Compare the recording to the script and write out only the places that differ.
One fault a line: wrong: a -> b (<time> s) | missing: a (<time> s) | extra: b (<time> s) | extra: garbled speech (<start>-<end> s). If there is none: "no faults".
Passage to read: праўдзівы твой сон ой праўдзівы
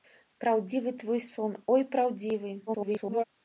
extra: garbled speech (2.7-3.2 s)